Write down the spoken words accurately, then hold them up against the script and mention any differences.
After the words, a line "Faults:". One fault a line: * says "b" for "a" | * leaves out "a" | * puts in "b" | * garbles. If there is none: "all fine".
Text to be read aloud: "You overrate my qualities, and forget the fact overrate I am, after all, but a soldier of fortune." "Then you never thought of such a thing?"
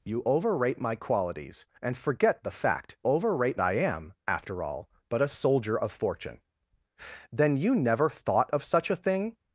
"You overrate my qualities, and forget the fact overrate I am, after all, but a soldier of fortune." "Then you never thought of such a thing?"
Faults:
all fine